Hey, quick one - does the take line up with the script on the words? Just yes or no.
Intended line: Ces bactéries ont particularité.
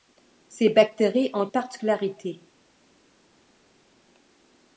yes